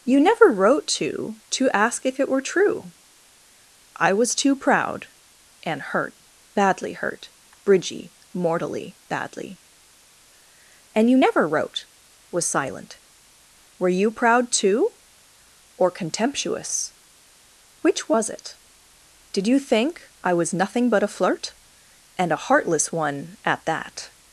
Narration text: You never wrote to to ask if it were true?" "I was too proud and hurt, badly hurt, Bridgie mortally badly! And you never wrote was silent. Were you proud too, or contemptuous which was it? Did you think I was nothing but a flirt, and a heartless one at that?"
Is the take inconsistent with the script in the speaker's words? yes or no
no